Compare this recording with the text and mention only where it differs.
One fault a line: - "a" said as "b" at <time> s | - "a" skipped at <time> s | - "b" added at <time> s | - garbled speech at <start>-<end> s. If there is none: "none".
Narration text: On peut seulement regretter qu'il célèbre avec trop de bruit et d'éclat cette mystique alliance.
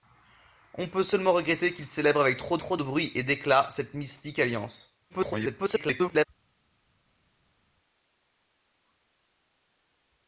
- "trop" added at 2.6 s
- garbled speech at 5.1-6.2 s